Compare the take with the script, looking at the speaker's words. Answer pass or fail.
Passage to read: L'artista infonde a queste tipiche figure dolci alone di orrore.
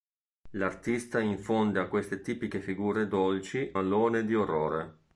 pass